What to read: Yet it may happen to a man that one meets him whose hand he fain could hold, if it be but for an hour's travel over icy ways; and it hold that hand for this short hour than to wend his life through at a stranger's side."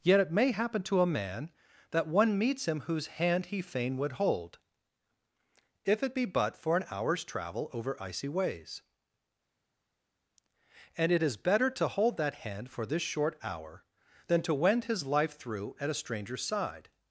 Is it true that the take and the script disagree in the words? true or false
true